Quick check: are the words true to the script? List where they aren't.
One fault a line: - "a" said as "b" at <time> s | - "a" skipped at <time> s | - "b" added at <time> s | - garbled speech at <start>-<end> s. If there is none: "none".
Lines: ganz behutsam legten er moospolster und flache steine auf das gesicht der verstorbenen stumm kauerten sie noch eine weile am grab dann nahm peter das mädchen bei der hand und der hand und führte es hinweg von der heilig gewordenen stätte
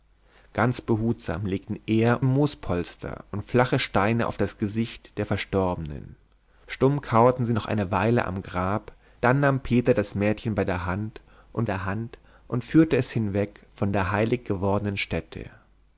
none